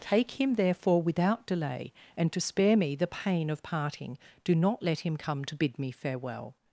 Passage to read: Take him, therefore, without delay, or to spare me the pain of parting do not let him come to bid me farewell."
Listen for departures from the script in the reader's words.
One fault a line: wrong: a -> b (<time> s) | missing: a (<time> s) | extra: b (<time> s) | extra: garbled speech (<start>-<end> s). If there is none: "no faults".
wrong: or -> and (2.2 s)